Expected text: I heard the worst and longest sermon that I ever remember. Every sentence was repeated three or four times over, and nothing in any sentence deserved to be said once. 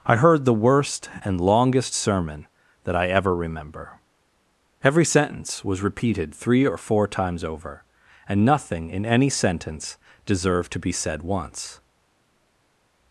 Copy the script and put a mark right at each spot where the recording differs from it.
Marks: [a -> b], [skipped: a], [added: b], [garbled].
I heard the worst and longest sermon that I ever remember. Every sentence was repeated three or four times over, and nothing in any sentence deserved to be said once.